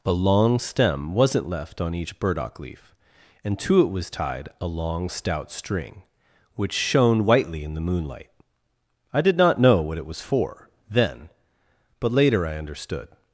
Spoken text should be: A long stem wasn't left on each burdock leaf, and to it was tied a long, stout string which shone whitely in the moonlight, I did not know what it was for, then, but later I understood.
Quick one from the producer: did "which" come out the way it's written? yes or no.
yes